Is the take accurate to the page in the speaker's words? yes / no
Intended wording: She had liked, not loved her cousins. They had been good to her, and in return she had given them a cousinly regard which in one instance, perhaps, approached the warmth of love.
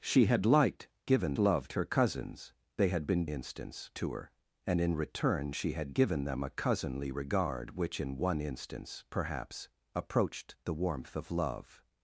no